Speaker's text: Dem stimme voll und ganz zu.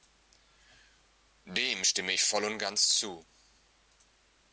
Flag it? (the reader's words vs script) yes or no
yes